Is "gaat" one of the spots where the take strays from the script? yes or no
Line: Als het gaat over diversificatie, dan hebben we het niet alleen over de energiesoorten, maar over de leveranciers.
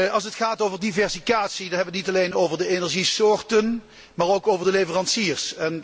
no